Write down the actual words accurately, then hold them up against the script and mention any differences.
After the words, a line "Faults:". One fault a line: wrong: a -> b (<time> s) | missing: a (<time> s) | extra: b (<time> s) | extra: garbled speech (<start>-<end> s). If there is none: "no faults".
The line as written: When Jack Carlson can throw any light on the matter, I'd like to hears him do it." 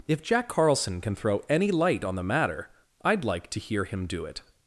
If Jack Carlson can throw any light on the matter, I'd like to hear him do it."
Faults:
wrong: When -> If (0.1 s)
wrong: hears -> hear (3.6 s)